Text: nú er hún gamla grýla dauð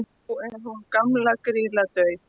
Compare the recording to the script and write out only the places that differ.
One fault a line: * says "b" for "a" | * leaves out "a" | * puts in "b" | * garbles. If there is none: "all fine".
all fine